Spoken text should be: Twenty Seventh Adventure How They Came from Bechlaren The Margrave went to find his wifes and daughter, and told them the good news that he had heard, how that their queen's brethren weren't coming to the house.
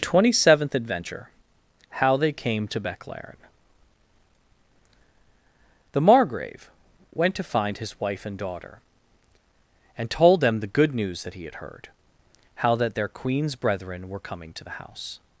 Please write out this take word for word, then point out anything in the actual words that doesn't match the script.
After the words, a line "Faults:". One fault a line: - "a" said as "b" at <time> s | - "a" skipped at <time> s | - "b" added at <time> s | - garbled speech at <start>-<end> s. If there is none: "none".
Twenty Seventh Adventure How They Came to Bechlaren The Margrave went to find his wife and daughter, and told them the good news that he had heard, how that their queen's brethren were coming to the house.
Faults:
- "from" said as "to" at 2.7 s
- "wifes" said as "wife" at 8.0 s
- "weren't" said as "were" at 14.1 s